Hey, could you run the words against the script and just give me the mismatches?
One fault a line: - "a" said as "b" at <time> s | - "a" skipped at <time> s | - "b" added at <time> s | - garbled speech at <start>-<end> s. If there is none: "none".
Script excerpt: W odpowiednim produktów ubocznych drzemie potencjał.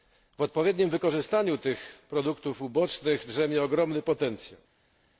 - "wykorzystaniu tych" added at 0.9 s
- "ogromny" added at 3.6 s